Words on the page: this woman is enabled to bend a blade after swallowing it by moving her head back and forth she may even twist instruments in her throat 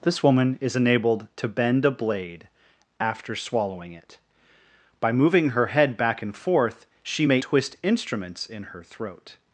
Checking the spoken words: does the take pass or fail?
fail